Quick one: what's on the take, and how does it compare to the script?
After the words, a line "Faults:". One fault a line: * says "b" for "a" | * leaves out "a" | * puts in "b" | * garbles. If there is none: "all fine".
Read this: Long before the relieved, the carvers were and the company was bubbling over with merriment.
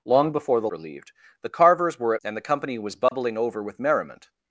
Long before the relieved, the carvers were and the company was bubbling over with merriment.
Faults:
all fine